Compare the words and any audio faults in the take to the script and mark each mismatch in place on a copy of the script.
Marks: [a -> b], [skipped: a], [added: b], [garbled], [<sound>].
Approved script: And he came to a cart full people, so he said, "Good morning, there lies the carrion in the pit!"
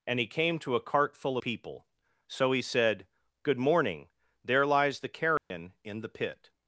And he came to a cart full people, so he said, "Good morning, there lies the carrion [dropout] in the pit!"